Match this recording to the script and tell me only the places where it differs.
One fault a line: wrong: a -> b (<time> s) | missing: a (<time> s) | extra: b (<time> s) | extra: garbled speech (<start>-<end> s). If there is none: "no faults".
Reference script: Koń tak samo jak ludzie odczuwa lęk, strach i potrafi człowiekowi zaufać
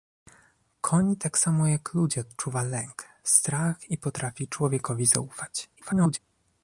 extra: garbled speech (5.8-6.2 s)